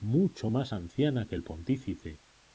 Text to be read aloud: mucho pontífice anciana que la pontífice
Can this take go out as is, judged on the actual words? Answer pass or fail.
fail